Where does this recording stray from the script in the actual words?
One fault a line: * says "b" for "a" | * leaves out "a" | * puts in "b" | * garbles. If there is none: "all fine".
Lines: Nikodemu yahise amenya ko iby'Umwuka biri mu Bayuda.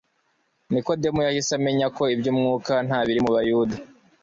* puts in "nta"